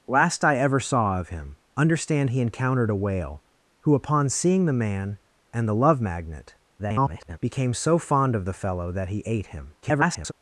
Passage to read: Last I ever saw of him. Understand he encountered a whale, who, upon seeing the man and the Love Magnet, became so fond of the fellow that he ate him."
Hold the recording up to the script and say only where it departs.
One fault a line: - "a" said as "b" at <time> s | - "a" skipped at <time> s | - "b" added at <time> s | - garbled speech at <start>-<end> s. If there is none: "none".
- garbled speech at 6.8-7.4 s
- garbled speech at 9.8-10.3 s